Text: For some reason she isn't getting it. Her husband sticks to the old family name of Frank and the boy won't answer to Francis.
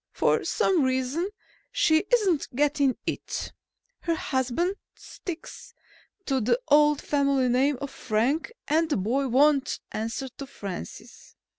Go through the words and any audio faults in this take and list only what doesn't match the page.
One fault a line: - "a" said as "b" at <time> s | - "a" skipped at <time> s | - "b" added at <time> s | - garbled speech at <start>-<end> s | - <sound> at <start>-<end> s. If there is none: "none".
none